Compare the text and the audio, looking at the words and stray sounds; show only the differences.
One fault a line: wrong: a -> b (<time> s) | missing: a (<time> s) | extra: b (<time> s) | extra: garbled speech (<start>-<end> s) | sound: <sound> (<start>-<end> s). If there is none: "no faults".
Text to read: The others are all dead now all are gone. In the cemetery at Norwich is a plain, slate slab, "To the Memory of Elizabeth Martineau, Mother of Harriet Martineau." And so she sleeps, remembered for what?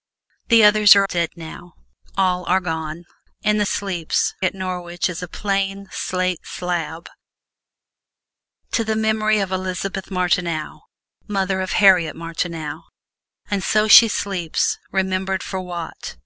missing: all (1.1 s)
wrong: cemetery -> sleeps (3.6 s)